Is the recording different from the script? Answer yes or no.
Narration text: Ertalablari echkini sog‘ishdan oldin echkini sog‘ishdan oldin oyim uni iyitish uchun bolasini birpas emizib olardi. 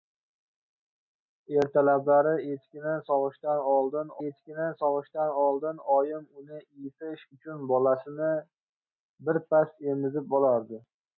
no